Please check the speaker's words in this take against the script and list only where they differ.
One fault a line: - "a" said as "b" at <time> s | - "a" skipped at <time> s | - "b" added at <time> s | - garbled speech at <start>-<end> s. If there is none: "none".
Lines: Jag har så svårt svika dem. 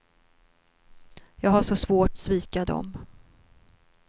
none